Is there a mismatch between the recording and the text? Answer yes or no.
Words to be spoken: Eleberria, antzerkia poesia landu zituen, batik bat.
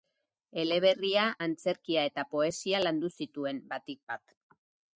yes